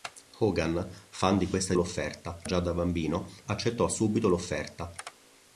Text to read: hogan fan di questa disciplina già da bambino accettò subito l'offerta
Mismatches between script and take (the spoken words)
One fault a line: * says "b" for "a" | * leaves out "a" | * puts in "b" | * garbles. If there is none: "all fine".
* says "l'offerta" for "disciplina"